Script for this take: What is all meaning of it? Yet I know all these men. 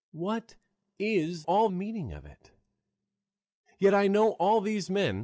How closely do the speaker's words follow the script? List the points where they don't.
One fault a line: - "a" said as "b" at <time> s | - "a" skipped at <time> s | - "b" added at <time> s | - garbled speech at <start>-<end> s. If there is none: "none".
none